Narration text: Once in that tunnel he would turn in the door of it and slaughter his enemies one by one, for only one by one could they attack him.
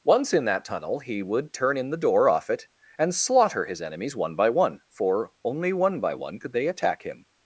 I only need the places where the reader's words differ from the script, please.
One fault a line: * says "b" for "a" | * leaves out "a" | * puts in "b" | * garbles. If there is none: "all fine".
* says "off" for "of"